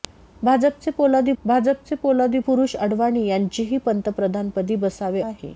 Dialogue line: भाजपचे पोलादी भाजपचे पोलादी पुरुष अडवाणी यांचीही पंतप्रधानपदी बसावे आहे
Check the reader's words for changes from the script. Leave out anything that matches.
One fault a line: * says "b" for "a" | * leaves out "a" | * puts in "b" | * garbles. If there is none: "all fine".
all fine